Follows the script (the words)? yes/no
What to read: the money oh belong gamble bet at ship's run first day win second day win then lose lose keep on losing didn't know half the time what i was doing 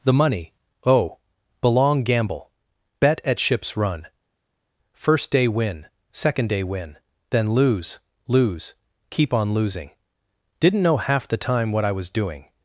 yes